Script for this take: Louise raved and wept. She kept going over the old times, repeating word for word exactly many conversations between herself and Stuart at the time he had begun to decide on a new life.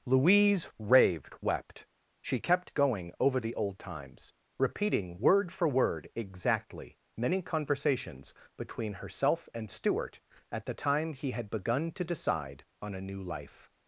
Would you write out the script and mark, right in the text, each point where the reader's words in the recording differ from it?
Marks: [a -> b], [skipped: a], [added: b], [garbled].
Louise raved [skipped: and] wept. She kept going over the old times, repeating word for word exactly many conversations between herself and Stuart at the time he had begun to decide on a new life.